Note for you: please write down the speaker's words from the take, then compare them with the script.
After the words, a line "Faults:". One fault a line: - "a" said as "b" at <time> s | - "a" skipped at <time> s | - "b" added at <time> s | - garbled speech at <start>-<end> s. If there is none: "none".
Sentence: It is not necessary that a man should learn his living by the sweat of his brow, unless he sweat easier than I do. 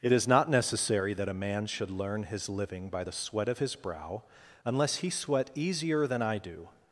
It is not necessary that a man should learn his living by the sweat of his brow, unless he sweat easier than I do.
Faults:
none